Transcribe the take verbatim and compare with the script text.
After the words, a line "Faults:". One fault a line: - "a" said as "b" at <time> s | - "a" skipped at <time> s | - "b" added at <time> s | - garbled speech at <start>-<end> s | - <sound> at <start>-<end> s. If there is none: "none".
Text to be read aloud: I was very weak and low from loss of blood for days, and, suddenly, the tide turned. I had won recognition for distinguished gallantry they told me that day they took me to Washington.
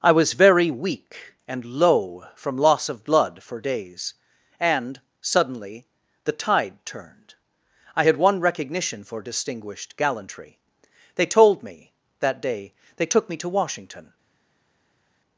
I was very weak and low from loss of blood for days, and, suddenly, the tide turned. I had won recognition for distinguished gallantry they told me that day they took me to Washington.
Faults:
none